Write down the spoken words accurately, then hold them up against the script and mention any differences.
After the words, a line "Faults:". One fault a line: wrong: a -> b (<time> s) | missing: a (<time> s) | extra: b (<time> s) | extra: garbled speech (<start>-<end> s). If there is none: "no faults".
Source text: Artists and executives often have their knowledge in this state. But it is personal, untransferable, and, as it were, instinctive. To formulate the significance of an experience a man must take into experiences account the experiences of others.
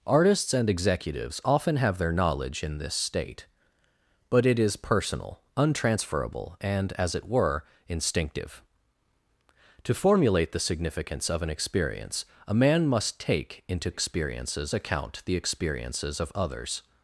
Artists and executives often have their knowledge in this state. But it is personal, untransferable, and, as it were, instinctive. To formulate the significance of an experience a man must take into experiences account the experiences of others.
Faults:
no faults